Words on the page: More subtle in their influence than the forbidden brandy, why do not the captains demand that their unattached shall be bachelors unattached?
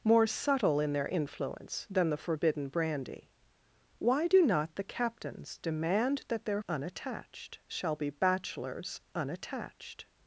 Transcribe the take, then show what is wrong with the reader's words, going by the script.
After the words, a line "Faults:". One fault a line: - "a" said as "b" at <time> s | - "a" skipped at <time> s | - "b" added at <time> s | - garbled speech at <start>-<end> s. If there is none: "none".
More subtle in their influence than the forbidden brandy, why do not the captains demand that their unattached shall be bachelors unattached?
Faults:
none